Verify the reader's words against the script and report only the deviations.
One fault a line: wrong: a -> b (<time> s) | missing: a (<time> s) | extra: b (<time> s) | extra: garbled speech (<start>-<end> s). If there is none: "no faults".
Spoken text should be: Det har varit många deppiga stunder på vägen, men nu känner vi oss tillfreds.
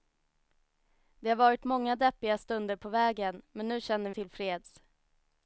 missing: vi oss (4.1 s)